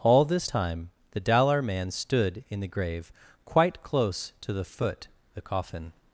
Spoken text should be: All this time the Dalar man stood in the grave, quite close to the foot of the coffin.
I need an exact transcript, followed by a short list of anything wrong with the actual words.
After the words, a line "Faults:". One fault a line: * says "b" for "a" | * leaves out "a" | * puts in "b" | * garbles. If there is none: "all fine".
All this time the Dalar man stood in the grave, quite close to the foot the coffin.
Faults:
* leaves out "of"